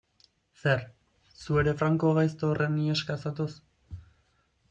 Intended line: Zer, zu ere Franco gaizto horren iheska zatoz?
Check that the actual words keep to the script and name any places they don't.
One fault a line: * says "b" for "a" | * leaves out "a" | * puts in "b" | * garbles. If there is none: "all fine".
all fine